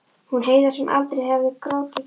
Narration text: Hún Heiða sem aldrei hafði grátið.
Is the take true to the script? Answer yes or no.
yes